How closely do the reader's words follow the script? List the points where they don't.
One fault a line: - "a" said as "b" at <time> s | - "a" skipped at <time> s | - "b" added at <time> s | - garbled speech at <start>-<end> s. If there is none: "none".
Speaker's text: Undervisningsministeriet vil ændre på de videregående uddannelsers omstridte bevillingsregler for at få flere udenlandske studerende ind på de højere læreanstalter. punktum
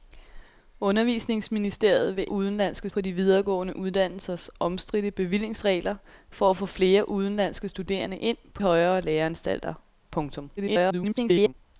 - "ændre" said as "udenlandske" at 2.3 s
- "de" skipped at 8.6 s
- garbled speech at 10.6-11.5 s